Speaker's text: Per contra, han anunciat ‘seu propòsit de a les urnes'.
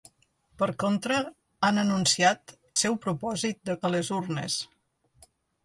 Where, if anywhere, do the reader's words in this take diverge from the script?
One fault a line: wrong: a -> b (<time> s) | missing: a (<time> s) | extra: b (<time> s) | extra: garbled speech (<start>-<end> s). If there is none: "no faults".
no faults